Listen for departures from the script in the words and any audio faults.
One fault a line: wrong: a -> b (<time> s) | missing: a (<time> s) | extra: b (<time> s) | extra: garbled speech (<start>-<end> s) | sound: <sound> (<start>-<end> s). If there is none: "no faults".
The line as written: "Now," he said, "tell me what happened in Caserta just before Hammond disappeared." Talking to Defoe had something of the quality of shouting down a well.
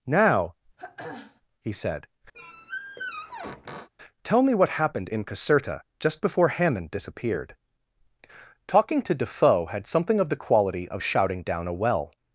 sound: throat clearing (0.8-1.4 s)
sound: squeak (2.3-3.9 s)